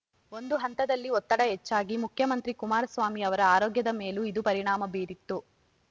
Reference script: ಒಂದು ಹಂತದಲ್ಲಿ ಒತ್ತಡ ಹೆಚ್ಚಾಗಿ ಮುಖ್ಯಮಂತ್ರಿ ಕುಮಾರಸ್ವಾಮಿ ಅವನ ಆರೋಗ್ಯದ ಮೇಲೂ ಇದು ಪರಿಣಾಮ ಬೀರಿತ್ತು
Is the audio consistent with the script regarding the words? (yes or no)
no